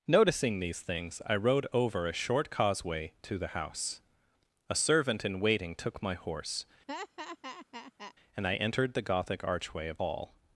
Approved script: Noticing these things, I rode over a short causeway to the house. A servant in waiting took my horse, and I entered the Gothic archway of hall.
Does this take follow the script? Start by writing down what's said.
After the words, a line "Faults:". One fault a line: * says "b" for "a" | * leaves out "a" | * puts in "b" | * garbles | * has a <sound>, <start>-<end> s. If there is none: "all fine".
Noticing these things, I rode over a short causeway to the house. A servant in waiting took my horse, and I entered the Gothic archway of hall.
Faults:
* has a laugh, 6.9-8.1 s